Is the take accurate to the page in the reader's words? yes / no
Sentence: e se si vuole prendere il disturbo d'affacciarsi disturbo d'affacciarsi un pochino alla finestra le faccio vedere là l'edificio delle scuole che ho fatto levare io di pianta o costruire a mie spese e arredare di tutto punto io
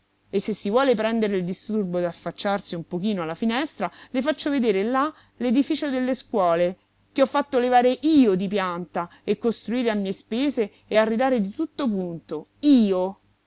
no